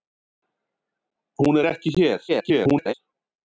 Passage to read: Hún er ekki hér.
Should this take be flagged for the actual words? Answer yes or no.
yes